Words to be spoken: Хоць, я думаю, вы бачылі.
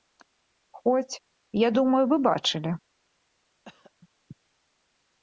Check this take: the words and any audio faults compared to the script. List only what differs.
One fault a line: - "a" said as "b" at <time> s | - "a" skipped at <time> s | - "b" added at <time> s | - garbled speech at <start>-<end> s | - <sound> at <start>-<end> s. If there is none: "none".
- cough at 3.7-3.9 s